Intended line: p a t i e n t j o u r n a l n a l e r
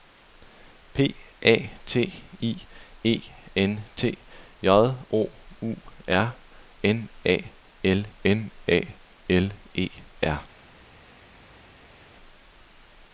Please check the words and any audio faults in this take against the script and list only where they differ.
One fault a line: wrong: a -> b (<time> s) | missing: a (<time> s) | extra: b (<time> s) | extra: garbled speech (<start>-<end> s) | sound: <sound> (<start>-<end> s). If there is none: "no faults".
no faults